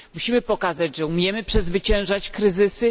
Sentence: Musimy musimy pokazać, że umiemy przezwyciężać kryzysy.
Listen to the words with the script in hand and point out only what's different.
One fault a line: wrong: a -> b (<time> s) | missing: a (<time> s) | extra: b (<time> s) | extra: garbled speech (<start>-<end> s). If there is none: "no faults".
missing: musimy (0.4 s)